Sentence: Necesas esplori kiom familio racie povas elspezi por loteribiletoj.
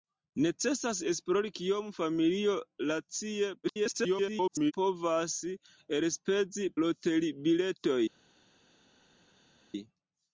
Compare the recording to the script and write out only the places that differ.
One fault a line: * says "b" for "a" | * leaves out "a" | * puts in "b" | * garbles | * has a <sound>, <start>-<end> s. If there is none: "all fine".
* garbles
* leaves out "por"